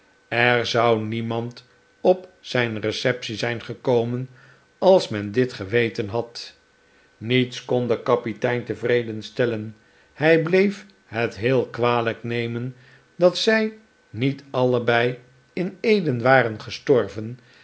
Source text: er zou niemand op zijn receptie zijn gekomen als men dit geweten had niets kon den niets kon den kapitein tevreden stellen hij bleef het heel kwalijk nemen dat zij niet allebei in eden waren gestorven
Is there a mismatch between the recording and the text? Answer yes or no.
yes